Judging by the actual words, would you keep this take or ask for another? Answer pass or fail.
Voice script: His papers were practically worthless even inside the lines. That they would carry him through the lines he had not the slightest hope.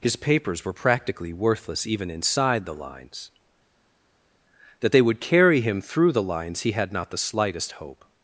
pass